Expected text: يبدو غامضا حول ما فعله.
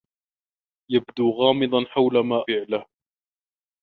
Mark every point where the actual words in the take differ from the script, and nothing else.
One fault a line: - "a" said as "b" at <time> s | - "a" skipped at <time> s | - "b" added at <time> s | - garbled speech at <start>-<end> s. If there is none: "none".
none